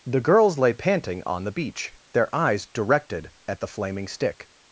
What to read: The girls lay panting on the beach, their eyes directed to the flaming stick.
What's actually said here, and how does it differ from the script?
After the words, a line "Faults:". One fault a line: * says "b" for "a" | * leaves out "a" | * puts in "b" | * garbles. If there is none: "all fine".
The girls lay panting on the beach, their eyes directed at the flaming stick.
Faults:
* says "at" for "to"